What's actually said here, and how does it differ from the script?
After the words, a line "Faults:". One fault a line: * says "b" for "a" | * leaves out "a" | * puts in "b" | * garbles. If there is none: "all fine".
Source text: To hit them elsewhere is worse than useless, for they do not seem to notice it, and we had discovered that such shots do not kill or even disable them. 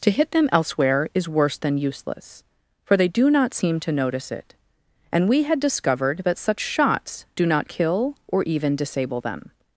To hit them elsewhere is worse than useless, for they do not seem to notice it, and we had discovered that such shots do not kill or even disable them.
Faults:
all fine